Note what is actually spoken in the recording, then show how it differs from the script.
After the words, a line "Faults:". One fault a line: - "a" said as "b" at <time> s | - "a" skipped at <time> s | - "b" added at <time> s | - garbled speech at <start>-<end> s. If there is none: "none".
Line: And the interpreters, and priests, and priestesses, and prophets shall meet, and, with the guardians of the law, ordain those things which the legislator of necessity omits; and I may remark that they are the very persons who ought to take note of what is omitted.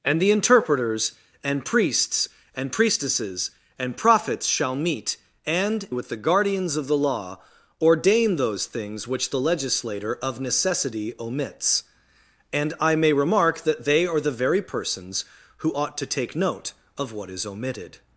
And the interpreters, and priests, and priestesses, and prophets shall meet, and, with the guardians of the law, ordain those things which the legislator of necessity omits; and I may remark that they are the very persons who ought to take note of what is omitted.
Faults:
none